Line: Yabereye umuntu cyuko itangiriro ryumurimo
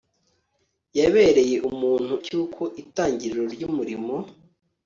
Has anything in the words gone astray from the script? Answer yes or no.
no